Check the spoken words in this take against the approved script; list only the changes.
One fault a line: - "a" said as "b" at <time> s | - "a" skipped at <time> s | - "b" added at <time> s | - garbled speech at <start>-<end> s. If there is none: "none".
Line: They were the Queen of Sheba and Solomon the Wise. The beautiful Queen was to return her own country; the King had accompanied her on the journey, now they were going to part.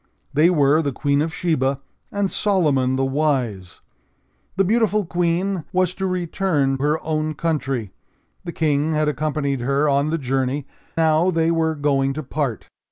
none